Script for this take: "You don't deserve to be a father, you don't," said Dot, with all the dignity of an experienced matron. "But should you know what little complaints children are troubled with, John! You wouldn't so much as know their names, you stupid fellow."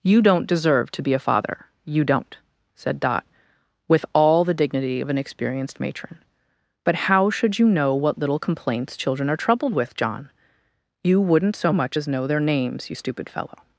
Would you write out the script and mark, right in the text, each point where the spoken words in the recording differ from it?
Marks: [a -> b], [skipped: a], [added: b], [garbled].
"You don't deserve to be a father, you don't," said Dot, with all the dignity of an experienced matron. "But [added: how] should you know what little complaints children are troubled with, John! You wouldn't so much as know their names, you stupid fellow."